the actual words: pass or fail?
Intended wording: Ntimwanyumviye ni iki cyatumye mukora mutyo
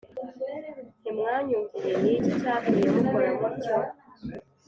pass